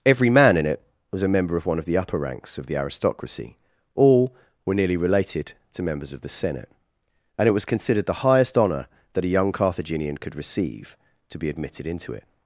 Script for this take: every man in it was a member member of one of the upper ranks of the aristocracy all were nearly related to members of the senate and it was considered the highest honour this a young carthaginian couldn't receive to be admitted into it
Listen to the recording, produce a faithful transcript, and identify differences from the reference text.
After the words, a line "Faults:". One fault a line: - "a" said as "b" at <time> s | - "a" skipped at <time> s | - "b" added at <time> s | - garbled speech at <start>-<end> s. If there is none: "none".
every man in it was a member of one of the upper ranks of the aristocracy all were nearly related to members of the senate and it was considered the highest honour that a young carthaginian could receive to be admitted into it
Faults:
- "member" skipped at 1.6 s
- "this" said as "that" at 9.1 s
- "couldn't" said as "could" at 10.2 s